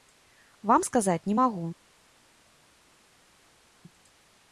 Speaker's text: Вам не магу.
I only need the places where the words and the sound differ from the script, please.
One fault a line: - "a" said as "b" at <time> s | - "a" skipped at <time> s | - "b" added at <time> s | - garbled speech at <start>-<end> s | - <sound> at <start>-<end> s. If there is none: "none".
- "сказаць" added at 0.9 s